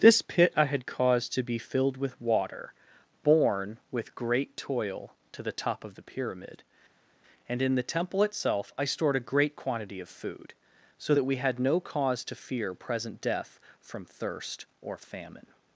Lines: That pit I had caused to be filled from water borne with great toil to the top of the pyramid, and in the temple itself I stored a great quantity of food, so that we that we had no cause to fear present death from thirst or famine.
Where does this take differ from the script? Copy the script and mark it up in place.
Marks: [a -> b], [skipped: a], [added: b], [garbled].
[That -> This] pit I had caused to be filled [from -> with] water borne with great toil to the top of the pyramid, and in the temple itself I stored a great quantity of food, so that we [skipped: that we] had no cause to fear present death from thirst or famine.